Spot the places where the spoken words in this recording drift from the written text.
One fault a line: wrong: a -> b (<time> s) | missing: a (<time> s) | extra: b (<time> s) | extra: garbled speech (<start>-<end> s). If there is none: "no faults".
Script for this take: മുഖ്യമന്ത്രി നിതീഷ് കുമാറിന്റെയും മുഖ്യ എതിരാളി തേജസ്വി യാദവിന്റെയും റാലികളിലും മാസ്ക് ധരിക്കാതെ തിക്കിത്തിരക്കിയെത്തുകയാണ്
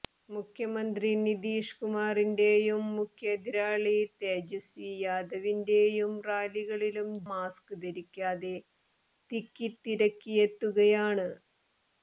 no faults